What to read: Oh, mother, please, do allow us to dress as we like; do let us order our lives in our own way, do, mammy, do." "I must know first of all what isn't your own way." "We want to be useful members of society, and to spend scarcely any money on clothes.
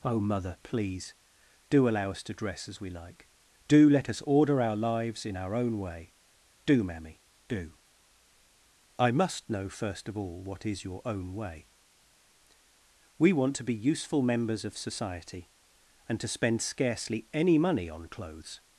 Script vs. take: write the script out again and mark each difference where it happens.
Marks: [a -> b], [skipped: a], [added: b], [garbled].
Oh, mother, please, do allow us to dress as we like; do let us order our lives in our own way, do, mammy, do." "I must know first of all what [isn't -> is] your own way." "We want to be useful members of society, and to spend scarcely any money on clothes.